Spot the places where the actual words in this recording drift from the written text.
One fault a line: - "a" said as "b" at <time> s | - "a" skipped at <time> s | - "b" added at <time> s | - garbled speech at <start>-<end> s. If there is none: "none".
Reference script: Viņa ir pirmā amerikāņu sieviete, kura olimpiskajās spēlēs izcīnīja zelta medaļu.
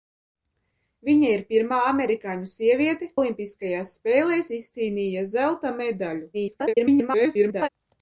- "kura" skipped at 3.1 s
- garbled speech at 6.3-7.7 s